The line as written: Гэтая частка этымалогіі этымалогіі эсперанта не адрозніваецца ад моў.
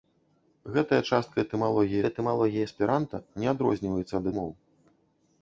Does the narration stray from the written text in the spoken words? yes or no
no